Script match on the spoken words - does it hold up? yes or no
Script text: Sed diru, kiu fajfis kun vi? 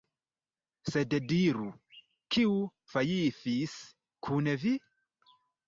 yes